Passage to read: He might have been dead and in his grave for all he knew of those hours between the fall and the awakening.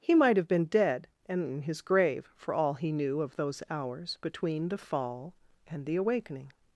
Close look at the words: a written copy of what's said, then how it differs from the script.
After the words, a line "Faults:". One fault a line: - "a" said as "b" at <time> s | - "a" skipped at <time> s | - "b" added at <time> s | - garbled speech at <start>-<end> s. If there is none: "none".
He might have been dead and in his grave for all he knew of those hours between the fall and the awakening.
Faults:
none